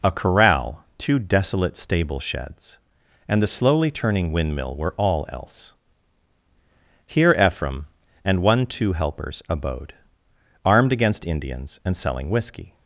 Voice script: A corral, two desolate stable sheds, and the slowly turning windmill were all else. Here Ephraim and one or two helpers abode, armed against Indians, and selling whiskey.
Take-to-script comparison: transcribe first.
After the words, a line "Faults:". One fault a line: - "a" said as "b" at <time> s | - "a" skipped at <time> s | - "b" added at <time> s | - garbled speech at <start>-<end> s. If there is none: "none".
A corral, two desolate stable sheds, and the slowly turning windmill were all else. Here Ephraim and one two helpers abode, armed against Indians, and selling whiskey.
Faults:
- "or" skipped at 8.7 s